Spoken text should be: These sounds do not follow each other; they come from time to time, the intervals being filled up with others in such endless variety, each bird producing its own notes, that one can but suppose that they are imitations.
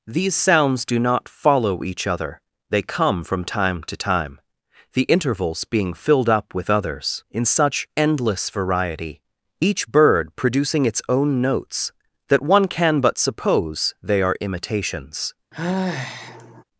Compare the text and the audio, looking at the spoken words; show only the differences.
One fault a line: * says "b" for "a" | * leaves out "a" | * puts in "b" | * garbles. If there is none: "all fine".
* leaves out "that"